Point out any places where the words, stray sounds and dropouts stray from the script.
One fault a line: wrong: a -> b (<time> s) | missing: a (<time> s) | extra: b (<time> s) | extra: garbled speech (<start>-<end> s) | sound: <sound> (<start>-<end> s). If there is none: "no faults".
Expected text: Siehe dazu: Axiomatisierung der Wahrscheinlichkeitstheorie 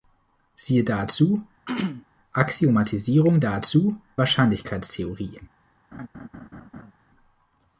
sound: throat clearing (1.7-2.1 s)
wrong: der -> dazu (3.4 s)
sound: laugh (5.9-6.9 s)